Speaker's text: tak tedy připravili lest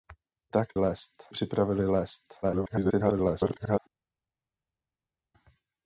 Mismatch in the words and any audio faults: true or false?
true